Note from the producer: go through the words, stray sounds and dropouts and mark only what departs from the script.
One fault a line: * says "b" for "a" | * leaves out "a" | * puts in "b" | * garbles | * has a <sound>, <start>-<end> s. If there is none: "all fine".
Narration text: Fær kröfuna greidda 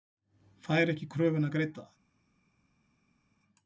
* puts in "ekki"